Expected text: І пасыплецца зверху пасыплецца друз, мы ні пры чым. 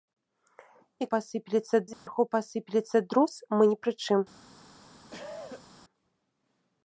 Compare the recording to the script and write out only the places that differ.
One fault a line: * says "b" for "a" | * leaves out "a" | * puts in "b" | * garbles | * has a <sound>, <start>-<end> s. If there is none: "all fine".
* has a dropout, 1.9-2.1 s
* has a cough, 5.1-5.7 s